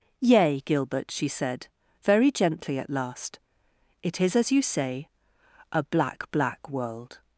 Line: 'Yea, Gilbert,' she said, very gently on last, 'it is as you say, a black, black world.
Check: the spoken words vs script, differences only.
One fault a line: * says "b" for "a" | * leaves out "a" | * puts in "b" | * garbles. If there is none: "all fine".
* says "at" for "on"